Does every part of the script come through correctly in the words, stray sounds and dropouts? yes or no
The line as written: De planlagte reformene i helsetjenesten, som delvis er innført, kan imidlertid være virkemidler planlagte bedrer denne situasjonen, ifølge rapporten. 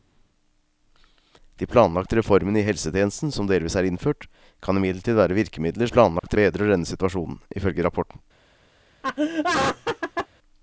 no